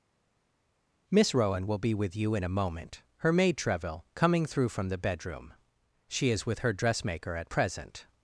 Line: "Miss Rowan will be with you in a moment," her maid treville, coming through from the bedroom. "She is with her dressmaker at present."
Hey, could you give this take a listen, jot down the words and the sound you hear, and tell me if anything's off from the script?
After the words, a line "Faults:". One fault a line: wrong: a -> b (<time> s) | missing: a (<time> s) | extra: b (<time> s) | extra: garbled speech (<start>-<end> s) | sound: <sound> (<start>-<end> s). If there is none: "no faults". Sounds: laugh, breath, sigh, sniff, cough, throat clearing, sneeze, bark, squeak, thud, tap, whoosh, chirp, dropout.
"Miss Rowan will be with you in a moment," her maid treville, coming through from the bedroom. "She is with her dressmaker at present."
Faults:
no faults